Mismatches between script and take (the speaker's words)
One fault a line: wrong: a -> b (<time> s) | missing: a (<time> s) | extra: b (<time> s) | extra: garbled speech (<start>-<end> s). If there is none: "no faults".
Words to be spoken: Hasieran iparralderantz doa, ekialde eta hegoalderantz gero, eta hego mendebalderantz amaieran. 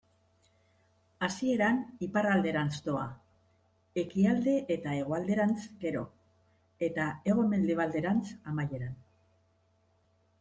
no faults